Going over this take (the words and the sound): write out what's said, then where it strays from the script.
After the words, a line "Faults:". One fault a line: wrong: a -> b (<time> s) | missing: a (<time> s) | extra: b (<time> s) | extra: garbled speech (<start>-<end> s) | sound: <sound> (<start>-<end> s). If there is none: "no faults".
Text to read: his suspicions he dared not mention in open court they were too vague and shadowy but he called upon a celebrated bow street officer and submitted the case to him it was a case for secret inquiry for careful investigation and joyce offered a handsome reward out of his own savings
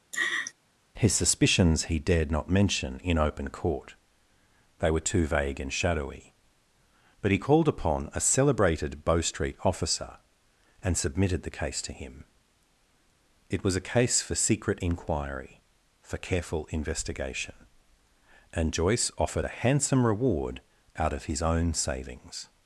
his suspicions he dared not mention in open court they were too vague and shadowy but he called upon a celebrated bow street officer and submitted the case to him it was a case for secret inquiry for careful investigation and joyce offered a handsome reward out of his own savings
Faults:
sound: laugh (0.1-0.5 s)